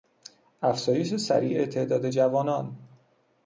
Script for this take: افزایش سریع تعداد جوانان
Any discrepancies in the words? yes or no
no